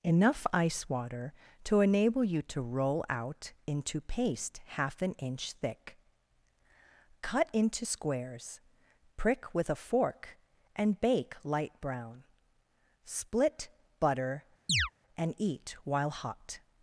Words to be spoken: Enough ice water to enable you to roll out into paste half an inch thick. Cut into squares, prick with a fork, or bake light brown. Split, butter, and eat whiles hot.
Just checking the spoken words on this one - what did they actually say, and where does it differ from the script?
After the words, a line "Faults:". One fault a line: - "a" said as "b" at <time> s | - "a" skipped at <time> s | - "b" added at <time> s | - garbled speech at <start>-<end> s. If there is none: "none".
Enough ice water to enable you to roll out into paste half an inch thick. Cut into squares, prick with a fork, and bake light brown. Split, butter, and eat while hot.
Faults:
- "or" said as "and" at 10.7 s
- "whiles" said as "while" at 15.8 s